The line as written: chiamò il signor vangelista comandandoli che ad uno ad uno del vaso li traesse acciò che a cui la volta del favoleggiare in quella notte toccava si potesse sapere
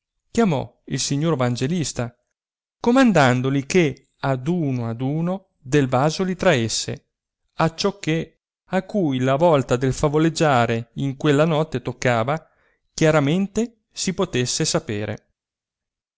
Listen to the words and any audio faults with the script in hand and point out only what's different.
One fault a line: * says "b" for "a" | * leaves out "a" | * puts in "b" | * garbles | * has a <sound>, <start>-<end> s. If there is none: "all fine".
* puts in "chiaramente"